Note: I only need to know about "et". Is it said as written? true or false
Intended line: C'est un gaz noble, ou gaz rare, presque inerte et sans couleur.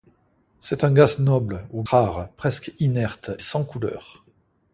false